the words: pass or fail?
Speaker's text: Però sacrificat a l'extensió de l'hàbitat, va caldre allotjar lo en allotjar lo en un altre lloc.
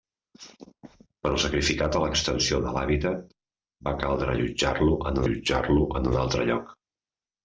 pass